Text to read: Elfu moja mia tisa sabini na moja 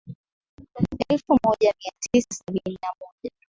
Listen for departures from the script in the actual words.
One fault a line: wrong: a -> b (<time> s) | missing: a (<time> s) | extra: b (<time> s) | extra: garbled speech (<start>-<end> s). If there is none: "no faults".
no faults